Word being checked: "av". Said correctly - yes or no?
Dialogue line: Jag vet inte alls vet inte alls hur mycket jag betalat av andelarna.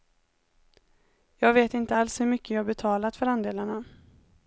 no